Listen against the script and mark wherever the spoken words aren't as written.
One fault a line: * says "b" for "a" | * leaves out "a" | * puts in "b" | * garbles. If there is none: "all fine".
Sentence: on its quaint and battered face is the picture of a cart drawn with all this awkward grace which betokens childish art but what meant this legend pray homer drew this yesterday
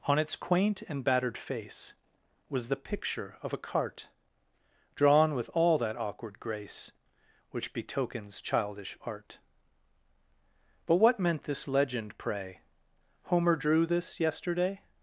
* says "was" for "is"
* says "that" for "this"